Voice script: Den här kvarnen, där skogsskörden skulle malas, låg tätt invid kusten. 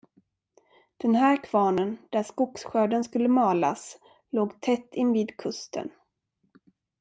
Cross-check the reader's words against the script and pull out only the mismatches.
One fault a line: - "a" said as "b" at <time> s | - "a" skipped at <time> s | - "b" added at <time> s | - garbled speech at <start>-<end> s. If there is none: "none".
none